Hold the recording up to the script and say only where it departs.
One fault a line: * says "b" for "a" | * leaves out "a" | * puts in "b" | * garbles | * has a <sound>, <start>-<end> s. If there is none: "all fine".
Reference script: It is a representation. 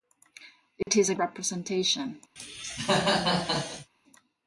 * has a dropout, 0.8-0.9 s
* has a cough, 2.4-3.9 s